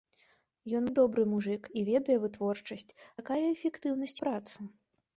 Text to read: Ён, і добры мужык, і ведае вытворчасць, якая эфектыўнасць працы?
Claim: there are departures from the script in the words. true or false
false